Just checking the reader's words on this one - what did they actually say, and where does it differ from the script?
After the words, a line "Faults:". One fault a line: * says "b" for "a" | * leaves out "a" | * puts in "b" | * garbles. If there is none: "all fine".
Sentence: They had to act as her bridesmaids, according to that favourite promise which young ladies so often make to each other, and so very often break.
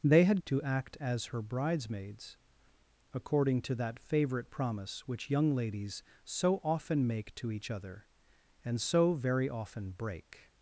They had to act as her bridesmaids, according to that favourite promise which young ladies so often make to each other, and so very often break.
Faults:
all fine